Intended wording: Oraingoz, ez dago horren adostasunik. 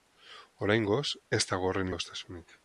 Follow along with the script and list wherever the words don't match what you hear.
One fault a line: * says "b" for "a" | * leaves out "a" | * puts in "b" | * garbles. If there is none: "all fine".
all fine